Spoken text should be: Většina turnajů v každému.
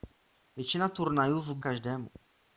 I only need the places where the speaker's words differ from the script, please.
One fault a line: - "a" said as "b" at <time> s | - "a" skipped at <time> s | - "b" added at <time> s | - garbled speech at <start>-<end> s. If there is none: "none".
none